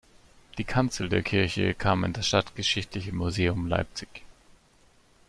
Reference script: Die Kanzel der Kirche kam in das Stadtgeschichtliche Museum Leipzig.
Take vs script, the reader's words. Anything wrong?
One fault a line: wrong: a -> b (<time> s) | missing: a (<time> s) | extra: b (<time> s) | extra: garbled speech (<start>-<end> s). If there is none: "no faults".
no faults